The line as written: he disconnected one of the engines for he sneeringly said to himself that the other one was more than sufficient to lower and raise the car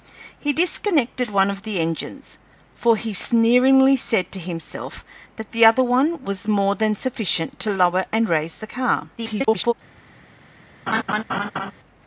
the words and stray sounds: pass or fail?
fail